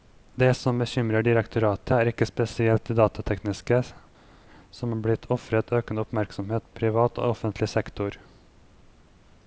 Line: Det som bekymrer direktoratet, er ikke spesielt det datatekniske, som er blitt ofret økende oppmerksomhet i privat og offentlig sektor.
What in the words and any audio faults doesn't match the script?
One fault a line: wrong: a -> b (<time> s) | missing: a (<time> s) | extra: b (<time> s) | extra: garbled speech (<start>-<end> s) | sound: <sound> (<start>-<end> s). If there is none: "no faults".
no faults